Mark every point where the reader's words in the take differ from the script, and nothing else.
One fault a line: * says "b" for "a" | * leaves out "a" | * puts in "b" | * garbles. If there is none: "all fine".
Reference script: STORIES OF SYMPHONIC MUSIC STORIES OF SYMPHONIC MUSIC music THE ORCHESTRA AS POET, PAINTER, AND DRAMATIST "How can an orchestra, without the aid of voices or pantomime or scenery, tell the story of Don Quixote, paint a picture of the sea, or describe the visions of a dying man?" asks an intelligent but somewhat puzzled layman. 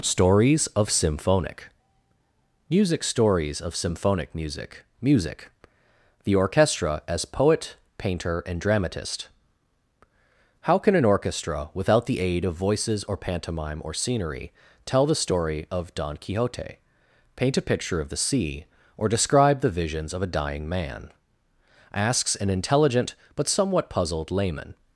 all fine